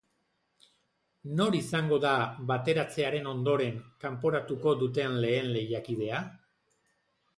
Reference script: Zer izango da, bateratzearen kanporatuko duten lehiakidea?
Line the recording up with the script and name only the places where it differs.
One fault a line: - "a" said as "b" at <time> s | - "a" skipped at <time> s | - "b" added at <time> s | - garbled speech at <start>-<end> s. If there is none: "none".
- "Zer" said as "Nor" at 1.4 s
- "ondoren" added at 3.3 s
- "lehen" added at 5.3 s